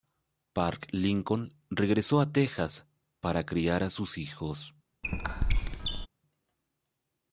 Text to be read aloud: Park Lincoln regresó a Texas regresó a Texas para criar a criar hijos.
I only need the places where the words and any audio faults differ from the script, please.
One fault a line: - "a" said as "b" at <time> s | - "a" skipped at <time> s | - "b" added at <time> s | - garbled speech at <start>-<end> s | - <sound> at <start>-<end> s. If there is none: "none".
- "regresó a Texas" skipped at 2.9 s
- "criar" said as "sus" at 3.9 s
- squeak at 5.0-6.1 s